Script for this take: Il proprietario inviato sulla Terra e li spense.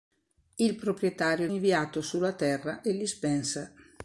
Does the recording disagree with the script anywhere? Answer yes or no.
no